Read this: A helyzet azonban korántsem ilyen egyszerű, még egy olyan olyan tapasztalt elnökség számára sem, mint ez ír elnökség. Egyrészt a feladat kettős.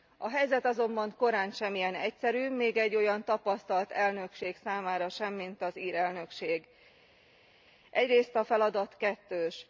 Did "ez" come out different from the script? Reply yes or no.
yes